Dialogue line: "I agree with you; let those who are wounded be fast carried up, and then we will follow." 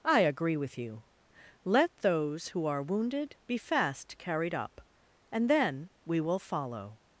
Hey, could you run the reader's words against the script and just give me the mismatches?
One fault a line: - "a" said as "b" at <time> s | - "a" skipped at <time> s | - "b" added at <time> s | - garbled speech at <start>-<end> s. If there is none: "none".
none